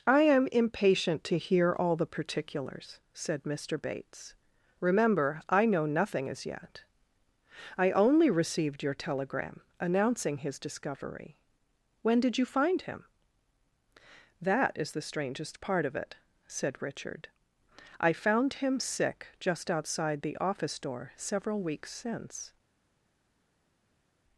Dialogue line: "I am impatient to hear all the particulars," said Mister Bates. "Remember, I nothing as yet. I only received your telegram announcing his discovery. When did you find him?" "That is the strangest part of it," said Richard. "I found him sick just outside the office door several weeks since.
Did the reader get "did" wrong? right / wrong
right